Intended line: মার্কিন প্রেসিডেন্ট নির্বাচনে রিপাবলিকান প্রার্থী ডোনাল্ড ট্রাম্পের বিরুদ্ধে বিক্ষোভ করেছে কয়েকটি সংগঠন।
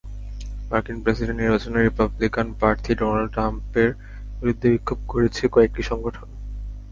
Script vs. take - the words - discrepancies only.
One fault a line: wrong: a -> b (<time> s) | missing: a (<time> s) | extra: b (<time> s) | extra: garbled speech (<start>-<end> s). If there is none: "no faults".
no faults